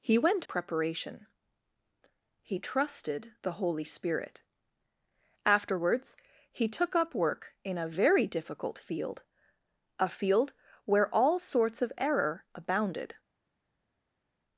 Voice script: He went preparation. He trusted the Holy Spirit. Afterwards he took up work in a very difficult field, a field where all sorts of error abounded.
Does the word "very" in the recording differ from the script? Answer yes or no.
no